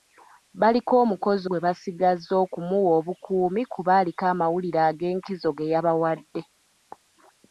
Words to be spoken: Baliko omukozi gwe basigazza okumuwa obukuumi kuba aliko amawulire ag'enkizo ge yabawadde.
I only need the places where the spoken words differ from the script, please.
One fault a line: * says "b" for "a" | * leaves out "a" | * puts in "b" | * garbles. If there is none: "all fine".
all fine